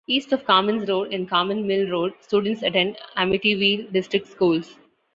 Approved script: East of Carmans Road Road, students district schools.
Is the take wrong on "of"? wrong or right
right